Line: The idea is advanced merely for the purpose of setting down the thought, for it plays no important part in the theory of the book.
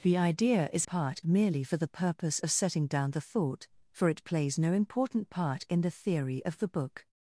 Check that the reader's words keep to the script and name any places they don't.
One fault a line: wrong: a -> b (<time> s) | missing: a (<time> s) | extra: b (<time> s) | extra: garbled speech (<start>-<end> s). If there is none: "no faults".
wrong: advanced -> part (0.8 s)